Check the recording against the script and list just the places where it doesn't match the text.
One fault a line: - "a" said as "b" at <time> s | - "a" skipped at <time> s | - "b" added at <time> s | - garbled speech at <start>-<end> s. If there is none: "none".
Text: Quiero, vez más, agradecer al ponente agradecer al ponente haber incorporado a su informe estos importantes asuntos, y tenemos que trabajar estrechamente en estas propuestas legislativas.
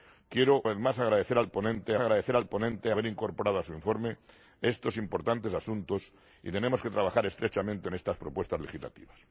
none